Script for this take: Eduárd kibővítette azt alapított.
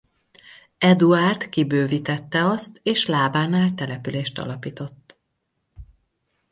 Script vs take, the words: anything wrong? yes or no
yes